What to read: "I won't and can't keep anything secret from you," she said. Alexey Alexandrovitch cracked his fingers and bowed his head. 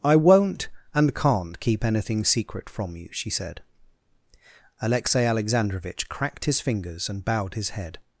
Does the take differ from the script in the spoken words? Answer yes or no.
no